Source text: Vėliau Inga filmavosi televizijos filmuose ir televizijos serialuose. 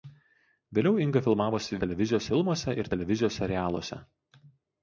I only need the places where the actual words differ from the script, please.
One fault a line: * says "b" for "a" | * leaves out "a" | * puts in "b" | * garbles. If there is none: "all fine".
all fine